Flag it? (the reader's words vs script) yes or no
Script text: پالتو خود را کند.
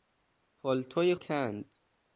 yes